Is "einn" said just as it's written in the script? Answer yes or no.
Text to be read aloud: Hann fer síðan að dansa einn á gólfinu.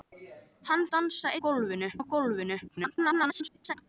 no